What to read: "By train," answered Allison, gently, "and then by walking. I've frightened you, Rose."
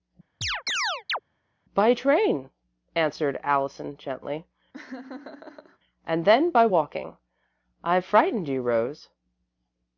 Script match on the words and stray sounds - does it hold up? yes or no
no